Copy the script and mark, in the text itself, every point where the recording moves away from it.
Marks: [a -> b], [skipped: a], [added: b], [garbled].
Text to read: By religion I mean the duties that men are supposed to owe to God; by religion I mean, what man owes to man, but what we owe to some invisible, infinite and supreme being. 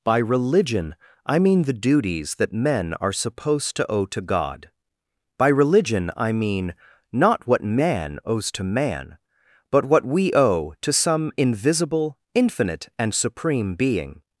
By religion I mean the duties that men are supposed to owe to God; by religion I mean, [added: not] what man owes to man, but what we owe to some invisible, infinite and supreme being.